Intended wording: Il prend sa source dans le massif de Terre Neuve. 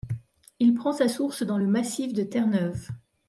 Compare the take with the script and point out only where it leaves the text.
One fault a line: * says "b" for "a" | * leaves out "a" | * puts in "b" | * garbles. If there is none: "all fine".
all fine